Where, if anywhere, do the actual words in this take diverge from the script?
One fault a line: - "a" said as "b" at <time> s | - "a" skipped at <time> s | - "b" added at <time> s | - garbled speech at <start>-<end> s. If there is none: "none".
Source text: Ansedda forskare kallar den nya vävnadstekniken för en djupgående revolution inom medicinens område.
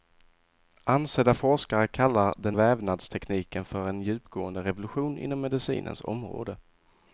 - "nya" skipped at 2.6 s